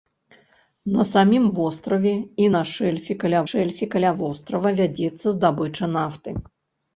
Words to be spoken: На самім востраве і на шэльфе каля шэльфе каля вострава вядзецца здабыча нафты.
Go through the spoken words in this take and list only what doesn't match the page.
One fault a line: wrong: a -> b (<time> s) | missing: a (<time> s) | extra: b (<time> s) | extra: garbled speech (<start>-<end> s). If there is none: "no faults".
no faults